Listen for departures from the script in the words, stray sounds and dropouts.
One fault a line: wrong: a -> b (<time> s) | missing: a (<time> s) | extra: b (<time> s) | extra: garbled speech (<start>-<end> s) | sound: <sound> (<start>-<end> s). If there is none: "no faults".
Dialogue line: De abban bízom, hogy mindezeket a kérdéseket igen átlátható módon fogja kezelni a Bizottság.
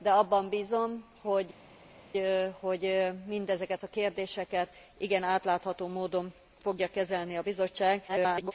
extra: garbled speech (8.1-8.5 s)